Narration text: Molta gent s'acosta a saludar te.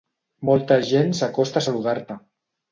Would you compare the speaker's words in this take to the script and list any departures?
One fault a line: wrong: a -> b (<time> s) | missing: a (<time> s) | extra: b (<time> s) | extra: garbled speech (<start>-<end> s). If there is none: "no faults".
no faults